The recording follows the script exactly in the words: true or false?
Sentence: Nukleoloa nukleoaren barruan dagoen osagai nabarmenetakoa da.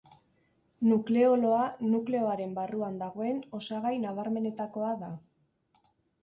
true